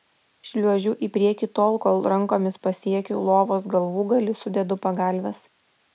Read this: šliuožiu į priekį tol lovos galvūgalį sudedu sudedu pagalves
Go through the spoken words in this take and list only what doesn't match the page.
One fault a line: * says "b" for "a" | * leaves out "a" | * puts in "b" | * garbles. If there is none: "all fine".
* puts in "kol rankomis pasiekiu"
* leaves out "sudedu"